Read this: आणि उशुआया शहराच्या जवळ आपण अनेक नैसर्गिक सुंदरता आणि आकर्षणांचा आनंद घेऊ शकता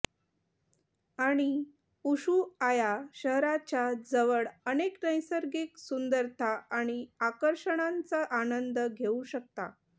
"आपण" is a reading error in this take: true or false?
true